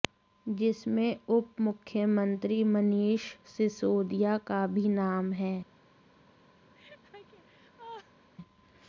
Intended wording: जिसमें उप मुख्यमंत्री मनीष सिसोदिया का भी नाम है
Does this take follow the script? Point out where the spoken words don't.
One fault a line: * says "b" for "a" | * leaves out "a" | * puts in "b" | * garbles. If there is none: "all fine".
all fine